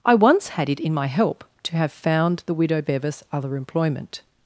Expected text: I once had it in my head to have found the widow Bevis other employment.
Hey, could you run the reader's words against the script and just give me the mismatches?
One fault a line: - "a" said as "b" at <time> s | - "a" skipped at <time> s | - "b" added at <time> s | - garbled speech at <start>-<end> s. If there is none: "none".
- "head" said as "help" at 1.1 s